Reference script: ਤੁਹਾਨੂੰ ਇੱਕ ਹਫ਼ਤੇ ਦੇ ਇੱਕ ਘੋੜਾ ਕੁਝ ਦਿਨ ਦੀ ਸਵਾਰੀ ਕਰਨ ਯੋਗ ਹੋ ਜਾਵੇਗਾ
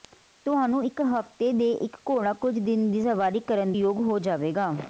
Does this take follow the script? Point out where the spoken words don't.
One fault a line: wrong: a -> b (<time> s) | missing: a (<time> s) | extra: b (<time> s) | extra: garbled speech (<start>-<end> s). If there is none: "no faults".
no faults